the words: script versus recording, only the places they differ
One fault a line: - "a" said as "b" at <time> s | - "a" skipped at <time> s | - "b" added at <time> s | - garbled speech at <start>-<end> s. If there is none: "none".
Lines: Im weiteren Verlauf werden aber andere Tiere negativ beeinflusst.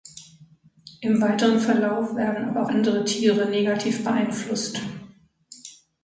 none